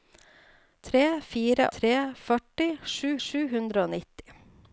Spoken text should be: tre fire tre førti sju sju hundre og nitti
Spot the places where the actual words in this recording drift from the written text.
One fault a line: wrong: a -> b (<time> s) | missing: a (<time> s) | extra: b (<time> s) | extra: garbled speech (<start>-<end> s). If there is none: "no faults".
no faults